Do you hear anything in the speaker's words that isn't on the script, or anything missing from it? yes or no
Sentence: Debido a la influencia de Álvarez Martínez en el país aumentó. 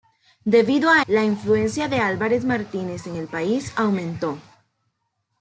no